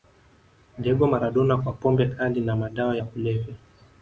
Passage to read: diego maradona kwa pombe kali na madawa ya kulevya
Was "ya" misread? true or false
false